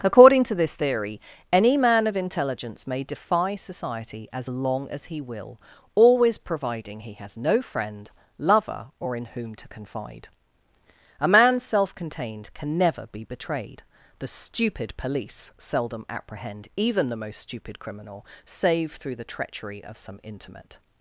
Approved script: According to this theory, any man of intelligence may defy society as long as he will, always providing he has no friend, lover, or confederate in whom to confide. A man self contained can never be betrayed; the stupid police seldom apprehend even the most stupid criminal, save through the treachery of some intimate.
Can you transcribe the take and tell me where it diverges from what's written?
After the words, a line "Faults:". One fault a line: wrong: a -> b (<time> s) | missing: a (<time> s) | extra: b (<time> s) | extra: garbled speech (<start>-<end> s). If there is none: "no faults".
According to this theory, any man of intelligence may defy society as long as he will, always providing he has no friend, lover, or in whom to confide. A man self contained can never be betrayed; the stupid police seldom apprehend even the most stupid criminal, save through the treachery of some intimate.
Faults:
missing: confederate (9.1 s)